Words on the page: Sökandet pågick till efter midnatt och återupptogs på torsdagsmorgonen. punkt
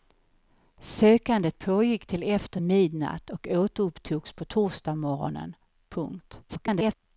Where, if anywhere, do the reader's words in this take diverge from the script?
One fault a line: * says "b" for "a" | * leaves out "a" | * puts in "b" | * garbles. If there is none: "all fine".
* garbles